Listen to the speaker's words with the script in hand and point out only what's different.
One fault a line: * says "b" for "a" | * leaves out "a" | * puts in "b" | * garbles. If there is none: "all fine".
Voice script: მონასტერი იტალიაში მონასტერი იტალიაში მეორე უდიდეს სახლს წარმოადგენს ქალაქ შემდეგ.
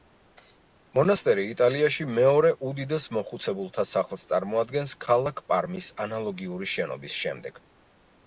* leaves out "მონასტერი იტალიაში"
* puts in "მოხუცებულთა"
* puts in "პარმის ანალოგიური შენობის"